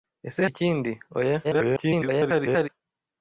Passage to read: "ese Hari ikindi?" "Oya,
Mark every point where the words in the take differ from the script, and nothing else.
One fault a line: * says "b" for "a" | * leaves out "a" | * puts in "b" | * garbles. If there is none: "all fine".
* leaves out "Hari"
* garbles